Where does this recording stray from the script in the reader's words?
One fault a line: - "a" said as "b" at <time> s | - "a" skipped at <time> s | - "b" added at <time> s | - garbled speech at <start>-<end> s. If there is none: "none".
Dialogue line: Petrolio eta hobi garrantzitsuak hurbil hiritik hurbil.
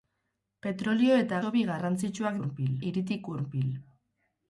none